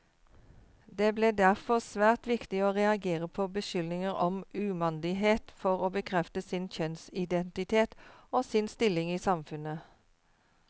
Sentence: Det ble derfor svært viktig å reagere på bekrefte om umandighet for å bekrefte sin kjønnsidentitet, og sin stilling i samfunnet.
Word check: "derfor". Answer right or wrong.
right